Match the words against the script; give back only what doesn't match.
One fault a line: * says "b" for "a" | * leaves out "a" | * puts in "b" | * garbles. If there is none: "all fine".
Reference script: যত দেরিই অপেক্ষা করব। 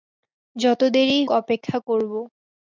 all fine